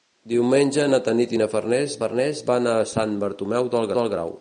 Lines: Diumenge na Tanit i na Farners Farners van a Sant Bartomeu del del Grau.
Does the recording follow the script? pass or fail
pass